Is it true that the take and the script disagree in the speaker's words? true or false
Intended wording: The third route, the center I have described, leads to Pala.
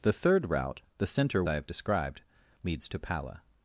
false